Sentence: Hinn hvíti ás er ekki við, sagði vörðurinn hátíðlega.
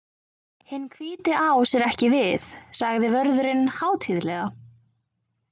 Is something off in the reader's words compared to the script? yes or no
no